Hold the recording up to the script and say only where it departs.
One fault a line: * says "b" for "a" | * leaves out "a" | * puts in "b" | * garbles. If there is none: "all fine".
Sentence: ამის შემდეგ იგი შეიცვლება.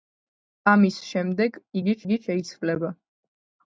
* puts in "იგი"